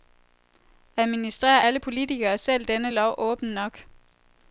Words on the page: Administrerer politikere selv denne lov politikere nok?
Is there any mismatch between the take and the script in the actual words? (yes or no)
yes